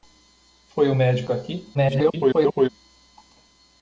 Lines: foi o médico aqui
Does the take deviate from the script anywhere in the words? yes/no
yes